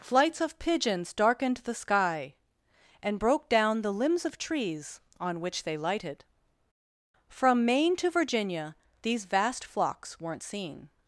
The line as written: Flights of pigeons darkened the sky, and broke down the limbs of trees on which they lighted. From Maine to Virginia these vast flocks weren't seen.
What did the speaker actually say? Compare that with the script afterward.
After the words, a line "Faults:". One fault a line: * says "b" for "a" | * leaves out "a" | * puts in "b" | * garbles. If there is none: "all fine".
Flights of pigeons darkened the sky, and broke down the limbs of trees on which they lighted. From Maine to Virginia these vast flocks weren't seen.
Faults:
all fine